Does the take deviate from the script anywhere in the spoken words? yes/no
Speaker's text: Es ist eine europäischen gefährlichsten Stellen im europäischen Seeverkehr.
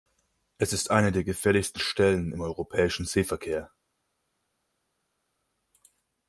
yes